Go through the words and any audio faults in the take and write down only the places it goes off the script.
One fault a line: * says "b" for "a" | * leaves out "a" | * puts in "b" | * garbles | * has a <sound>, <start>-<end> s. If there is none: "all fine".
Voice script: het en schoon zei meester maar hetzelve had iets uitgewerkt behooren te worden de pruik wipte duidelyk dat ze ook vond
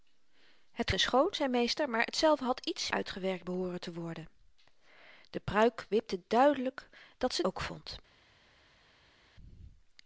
all fine